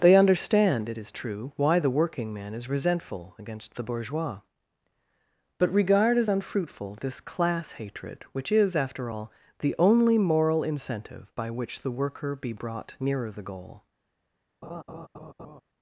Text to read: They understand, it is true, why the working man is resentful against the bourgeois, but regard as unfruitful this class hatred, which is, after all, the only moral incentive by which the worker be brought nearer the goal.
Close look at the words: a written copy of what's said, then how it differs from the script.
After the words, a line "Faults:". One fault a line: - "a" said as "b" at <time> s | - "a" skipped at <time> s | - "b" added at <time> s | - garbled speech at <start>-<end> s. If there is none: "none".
They understand, it is true, why the working man is resentful against the bourgeois, but regard as unfruitful this class hatred, which is, after all, the only moral incentive by which the worker be brought nearer the goal.
Faults:
none